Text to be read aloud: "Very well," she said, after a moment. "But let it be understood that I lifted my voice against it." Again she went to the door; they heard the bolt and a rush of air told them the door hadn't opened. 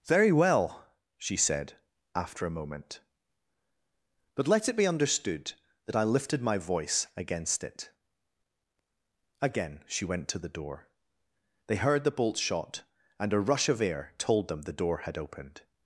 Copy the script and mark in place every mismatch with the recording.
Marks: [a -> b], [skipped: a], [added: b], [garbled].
"Very well," she said, after a moment. "But let it be understood that I lifted my voice against it." Again she went to the door; they heard the bolt [added: shot] and a rush of air told them the door [hadn't -> had] opened.